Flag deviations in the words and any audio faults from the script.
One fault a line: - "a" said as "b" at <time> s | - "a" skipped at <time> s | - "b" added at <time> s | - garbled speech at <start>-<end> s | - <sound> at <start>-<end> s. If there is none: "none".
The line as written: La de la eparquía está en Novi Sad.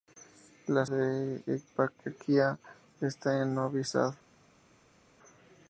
none